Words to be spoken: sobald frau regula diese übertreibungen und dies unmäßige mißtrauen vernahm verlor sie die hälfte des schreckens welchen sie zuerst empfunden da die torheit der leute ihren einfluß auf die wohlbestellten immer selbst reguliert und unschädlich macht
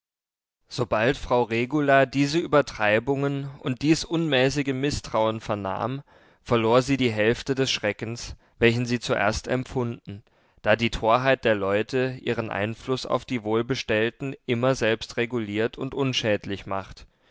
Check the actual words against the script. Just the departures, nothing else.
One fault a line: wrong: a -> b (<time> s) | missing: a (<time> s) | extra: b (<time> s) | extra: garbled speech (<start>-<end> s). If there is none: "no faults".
no faults